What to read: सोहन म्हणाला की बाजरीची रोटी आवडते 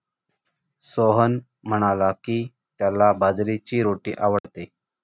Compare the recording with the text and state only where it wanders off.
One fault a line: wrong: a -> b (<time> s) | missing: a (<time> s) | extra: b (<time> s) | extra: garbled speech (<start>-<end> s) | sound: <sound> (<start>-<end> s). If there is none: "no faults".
extra: त्याला (2.8 s)
sound: dropout (4.4-4.4 s)